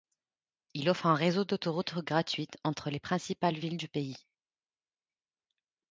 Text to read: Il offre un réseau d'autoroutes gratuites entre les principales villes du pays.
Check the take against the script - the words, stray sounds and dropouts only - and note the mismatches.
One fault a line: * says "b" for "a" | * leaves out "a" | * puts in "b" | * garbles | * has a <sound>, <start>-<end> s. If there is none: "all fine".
all fine